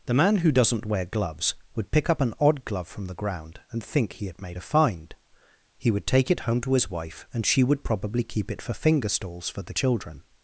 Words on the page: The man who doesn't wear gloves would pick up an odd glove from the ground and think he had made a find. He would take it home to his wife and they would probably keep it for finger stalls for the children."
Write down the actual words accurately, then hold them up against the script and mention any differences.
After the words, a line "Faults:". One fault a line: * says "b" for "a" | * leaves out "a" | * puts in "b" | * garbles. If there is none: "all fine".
The man who doesn't wear gloves would pick up an odd glove from the ground and think he had made a find. He would take it home to his wife and she would probably keep it for finger stalls for the children."
Faults:
* says "she" for "they"